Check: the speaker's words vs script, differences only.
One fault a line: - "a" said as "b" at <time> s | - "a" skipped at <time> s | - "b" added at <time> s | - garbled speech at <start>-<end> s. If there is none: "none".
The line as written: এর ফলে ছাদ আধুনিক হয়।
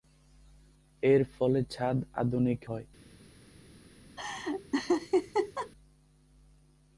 none